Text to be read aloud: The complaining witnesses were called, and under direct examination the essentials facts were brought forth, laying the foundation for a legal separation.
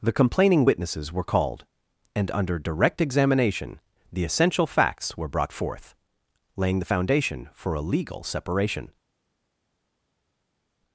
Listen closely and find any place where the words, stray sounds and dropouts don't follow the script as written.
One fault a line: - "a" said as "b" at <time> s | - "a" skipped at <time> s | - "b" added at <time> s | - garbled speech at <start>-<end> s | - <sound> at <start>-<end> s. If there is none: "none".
- "essentials" said as "essential" at 4.2 s